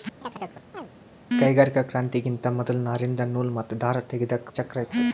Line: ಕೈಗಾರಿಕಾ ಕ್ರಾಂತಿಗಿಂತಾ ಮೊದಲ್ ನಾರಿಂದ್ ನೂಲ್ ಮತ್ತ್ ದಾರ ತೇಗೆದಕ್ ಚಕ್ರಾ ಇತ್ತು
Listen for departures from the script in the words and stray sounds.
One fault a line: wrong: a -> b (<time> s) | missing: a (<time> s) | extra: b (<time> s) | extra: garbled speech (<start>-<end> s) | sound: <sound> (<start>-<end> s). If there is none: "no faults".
sound: chirp (0.2-0.9 s)